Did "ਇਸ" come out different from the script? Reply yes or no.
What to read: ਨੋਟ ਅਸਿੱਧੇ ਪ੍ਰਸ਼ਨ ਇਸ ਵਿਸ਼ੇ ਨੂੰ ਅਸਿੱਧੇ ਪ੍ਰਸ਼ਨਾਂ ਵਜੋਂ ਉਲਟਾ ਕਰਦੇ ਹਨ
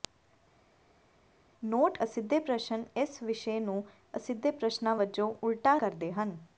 no